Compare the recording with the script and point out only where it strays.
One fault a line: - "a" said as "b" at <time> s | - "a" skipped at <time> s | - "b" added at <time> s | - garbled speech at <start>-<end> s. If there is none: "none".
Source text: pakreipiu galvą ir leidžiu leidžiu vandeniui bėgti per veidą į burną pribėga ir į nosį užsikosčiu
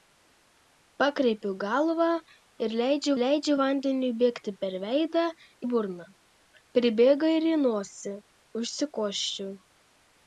none